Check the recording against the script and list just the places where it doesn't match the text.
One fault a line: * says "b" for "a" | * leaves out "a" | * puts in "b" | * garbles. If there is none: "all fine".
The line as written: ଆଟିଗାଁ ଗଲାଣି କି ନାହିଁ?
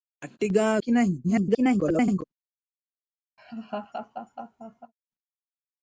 * leaves out "ଗଲାଣି"
* garbles